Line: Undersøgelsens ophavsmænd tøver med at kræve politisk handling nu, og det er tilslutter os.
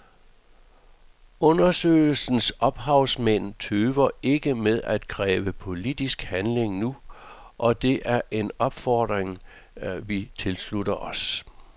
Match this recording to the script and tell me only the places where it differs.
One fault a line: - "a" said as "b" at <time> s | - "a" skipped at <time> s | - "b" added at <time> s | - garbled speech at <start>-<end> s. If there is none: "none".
- "ikke" added at 4.2 s
- "en opfordring vi" added at 8.3 s